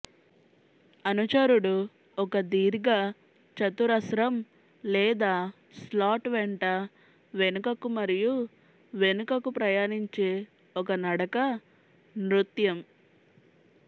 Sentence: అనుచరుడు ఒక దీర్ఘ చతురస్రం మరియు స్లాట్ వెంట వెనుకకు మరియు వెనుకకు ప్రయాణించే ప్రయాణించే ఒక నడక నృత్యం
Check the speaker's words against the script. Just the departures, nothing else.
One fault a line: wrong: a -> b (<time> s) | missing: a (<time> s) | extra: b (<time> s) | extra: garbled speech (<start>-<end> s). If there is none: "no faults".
wrong: మరియు -> లేదా (4.8 s)
missing: ప్రయాణించే (10.3 s)